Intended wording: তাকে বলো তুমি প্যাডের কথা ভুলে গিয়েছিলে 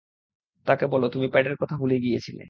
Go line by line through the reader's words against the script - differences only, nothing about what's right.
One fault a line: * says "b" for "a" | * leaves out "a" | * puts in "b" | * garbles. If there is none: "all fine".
all fine